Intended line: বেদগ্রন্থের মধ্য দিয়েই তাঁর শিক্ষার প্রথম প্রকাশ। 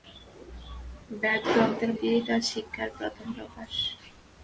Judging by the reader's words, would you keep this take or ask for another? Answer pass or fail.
fail